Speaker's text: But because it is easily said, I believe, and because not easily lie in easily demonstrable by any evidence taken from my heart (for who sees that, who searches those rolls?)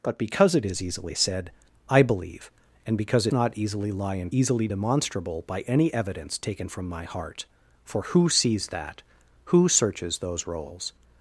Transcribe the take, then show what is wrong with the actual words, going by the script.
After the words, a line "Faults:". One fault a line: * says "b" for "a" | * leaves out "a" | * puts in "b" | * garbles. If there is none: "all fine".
But because it is easily said, I believe, and because not easily lie in easily demonstrable by any evidence taken from my heart (for who sees that, who searches those rolls?)
Faults:
all fine